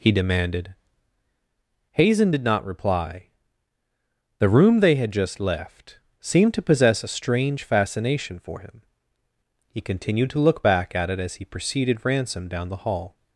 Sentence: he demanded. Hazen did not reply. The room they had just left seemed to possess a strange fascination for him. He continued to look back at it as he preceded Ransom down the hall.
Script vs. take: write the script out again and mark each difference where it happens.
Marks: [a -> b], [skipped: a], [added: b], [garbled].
he demanded. Hazen did not reply. The room they had just left seemed to possess a strange fascination for him. He continued to look back at it as he preceded Ransom down the hall.